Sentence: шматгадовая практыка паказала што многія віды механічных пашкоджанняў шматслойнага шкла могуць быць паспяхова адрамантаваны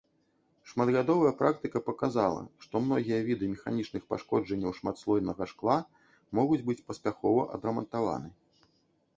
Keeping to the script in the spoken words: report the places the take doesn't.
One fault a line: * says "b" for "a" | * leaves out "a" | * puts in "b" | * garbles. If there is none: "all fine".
all fine